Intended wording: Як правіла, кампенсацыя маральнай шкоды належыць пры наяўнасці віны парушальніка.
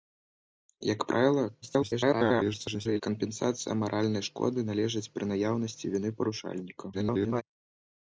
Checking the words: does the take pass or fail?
fail